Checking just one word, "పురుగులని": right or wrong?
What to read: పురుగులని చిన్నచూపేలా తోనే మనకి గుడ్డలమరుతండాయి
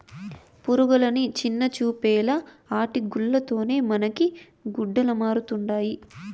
right